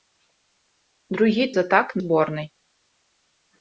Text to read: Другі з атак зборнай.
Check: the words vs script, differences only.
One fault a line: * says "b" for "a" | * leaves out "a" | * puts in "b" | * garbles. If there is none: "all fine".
all fine